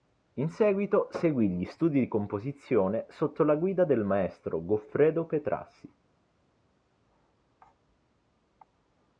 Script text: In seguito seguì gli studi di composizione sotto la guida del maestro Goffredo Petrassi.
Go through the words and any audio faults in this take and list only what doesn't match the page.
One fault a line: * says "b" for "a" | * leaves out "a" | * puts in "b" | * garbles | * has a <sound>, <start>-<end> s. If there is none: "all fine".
all fine